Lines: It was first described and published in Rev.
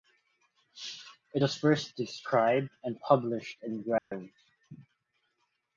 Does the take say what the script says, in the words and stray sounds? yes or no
no